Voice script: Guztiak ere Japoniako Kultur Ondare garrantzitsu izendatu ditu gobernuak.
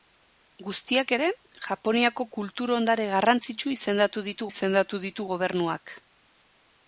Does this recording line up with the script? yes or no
no